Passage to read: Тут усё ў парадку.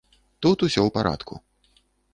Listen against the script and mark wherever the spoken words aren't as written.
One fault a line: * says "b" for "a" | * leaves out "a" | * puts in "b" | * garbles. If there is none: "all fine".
all fine